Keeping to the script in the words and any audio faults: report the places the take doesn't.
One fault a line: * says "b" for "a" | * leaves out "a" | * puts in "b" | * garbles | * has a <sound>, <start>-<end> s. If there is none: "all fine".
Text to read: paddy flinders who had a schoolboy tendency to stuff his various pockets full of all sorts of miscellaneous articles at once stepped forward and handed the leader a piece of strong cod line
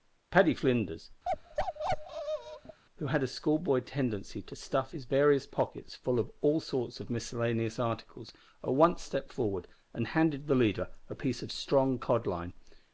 * has a bark, 1.2-2.8 s